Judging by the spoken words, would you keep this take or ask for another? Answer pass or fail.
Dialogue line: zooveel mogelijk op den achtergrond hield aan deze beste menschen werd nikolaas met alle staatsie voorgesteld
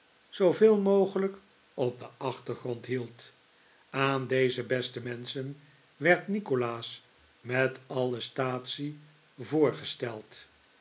pass